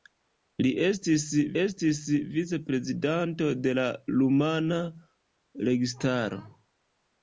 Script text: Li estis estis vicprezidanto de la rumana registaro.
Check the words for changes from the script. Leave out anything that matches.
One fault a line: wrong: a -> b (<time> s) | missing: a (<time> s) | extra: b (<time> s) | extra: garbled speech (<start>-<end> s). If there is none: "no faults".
no faults